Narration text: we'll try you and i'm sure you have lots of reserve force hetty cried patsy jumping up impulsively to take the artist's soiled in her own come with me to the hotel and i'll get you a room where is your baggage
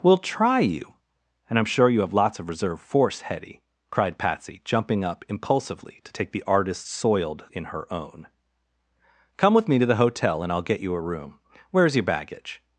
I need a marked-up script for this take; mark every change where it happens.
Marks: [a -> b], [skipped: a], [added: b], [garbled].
we'll try you and i'm sure you have lots of reserve force hetty cried patsy jumping up impulsively to take the artist's soiled in her own come with me to the hotel and i'll get you a room where is your baggage